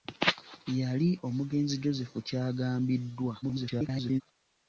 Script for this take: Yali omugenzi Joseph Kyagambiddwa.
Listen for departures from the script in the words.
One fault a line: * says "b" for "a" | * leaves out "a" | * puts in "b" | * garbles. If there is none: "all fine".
* garbles